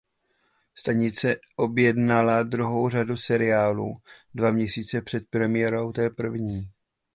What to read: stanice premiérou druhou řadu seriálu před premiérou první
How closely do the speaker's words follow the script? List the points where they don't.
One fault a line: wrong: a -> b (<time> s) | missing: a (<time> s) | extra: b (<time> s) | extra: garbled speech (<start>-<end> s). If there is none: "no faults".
wrong: premiérou -> objednala (1.5 s)
extra: dva měsíce (4.3 s)
extra: té (5.9 s)